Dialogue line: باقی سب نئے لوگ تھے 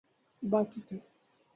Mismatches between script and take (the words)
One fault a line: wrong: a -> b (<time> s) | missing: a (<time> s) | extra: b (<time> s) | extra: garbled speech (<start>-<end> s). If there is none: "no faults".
missing: سب نئے لوگ (0.8 s)